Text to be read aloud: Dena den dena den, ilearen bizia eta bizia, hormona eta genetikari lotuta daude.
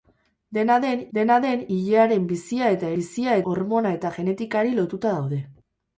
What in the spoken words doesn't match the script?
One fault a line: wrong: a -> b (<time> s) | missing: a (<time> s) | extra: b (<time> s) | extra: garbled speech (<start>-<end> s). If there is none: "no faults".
no faults